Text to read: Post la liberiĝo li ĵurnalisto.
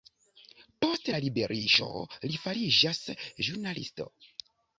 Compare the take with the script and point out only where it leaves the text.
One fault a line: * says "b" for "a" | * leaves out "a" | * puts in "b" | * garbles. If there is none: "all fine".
* puts in "fariĝas"